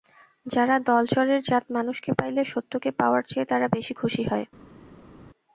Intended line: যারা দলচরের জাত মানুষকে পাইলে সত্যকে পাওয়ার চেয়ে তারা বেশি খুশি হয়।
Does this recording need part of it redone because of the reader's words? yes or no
no